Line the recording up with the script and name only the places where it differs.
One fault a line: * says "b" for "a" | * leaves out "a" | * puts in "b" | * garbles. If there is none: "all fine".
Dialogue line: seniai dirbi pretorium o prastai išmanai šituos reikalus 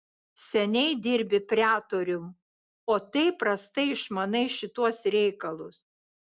* puts in "taip"